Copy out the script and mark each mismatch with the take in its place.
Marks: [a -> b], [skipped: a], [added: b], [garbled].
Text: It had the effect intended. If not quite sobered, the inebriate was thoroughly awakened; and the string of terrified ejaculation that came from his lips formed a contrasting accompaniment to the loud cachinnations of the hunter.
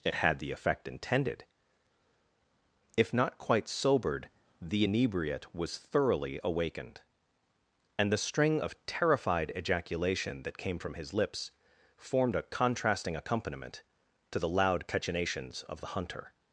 It had the effect intended. If not quite sobered, the inebriate was thoroughly awakened; and the string of terrified ejaculation that came from his lips formed a contrasting accompaniment to the loud cachinnations of the hunter.